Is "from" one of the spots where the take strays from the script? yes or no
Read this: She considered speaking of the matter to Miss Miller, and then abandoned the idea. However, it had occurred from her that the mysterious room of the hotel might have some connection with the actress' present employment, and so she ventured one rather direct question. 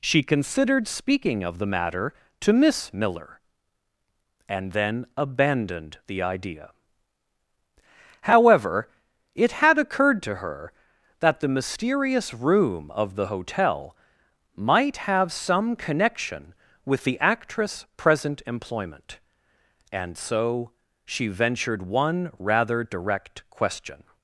yes